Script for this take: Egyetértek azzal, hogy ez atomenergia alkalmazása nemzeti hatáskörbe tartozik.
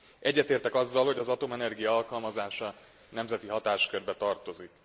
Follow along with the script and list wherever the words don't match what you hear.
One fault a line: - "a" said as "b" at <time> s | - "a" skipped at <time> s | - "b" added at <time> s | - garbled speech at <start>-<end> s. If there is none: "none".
- "ez" said as "az" at 1.2 s